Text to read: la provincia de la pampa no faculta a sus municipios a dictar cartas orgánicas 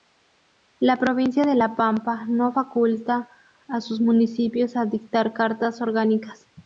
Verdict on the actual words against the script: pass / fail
pass